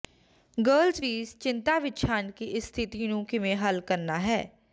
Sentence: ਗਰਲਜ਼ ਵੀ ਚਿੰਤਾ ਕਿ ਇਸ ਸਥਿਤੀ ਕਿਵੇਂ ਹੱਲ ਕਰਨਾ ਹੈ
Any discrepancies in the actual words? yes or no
yes